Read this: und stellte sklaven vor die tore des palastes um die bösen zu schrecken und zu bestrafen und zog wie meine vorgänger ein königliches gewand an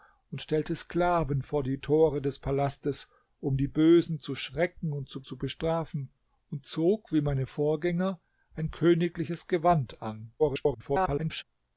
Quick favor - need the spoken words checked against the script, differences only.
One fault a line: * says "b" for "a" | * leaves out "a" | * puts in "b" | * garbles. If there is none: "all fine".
* puts in "zu"
* garbles